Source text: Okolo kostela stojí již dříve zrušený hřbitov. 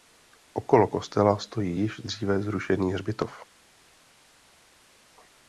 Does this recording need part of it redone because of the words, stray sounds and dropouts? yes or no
no